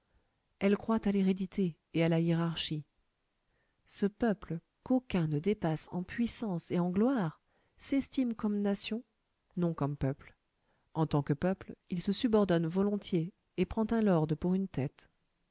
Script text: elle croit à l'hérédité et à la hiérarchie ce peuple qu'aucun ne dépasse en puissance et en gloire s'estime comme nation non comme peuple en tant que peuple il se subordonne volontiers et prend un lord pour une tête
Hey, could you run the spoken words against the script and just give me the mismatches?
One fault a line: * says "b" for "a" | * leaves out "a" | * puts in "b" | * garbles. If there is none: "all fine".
all fine